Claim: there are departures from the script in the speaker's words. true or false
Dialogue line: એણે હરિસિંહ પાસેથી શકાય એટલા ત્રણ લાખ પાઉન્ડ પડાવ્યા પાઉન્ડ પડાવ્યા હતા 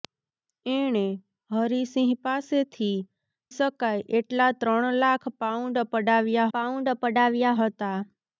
false